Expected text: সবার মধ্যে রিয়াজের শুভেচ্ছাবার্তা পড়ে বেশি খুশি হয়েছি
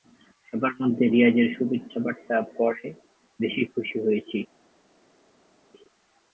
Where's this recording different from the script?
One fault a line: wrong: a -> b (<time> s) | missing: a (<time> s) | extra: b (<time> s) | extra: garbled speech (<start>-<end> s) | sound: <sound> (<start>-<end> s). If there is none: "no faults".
no faults